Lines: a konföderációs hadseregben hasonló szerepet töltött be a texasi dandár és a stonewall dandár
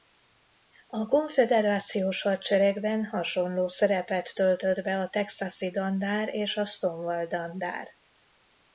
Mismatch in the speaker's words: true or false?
false